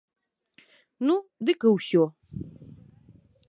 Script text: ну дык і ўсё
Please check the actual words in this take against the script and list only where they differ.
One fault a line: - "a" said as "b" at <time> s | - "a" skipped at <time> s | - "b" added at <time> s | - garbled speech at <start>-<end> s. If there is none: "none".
none